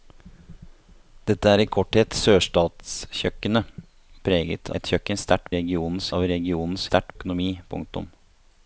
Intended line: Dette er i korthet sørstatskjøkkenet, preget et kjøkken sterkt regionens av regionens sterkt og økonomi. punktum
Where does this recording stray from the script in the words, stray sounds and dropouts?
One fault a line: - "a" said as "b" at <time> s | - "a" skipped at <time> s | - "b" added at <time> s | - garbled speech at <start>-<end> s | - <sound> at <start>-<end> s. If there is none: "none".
none